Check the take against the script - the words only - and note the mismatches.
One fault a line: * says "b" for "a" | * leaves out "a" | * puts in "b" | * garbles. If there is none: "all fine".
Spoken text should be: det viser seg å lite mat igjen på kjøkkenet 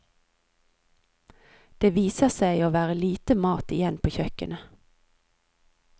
* puts in "være"